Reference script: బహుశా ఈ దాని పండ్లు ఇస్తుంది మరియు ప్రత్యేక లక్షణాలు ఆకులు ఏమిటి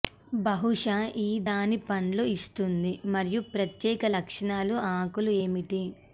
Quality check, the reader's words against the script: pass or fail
pass